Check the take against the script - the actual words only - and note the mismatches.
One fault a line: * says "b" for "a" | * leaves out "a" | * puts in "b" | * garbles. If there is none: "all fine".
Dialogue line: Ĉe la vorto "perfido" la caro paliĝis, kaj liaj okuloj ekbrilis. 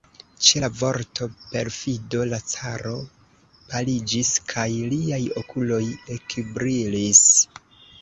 all fine